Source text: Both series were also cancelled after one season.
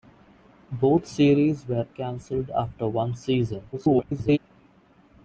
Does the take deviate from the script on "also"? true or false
true